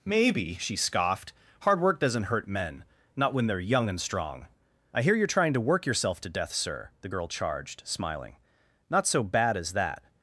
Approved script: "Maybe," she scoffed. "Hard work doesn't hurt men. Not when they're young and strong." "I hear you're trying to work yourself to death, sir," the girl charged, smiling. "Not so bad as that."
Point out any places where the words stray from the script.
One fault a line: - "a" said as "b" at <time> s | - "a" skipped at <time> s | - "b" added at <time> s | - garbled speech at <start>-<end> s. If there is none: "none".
none